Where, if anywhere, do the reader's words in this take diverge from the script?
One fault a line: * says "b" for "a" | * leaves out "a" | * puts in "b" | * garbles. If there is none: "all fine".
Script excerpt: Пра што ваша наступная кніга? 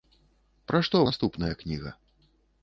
* leaves out "ваша"